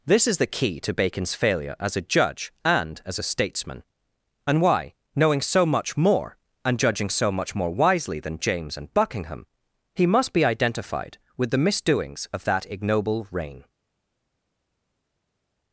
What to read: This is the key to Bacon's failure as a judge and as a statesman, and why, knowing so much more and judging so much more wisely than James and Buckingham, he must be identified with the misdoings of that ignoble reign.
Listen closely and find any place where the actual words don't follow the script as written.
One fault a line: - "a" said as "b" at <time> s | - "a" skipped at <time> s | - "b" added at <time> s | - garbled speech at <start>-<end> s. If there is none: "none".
none